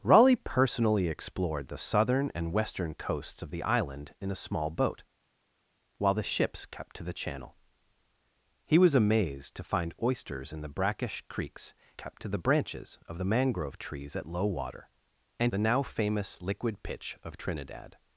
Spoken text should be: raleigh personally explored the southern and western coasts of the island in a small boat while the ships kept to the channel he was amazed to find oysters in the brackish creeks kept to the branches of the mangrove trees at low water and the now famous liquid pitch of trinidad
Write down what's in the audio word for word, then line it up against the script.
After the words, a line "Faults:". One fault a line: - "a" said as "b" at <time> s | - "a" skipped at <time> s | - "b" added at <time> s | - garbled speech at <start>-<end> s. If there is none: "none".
raleigh personally explored the southern and western coasts of the island in a small boat while the ships kept to the channel he was amazed to find oysters in the brackish creeks kept to the branches of the mangrove trees at low water and the now famous liquid pitch of trinidad
Faults:
none